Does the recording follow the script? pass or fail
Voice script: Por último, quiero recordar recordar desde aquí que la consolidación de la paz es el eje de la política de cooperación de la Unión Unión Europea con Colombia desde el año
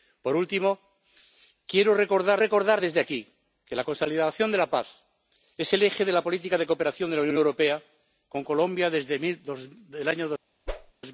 pass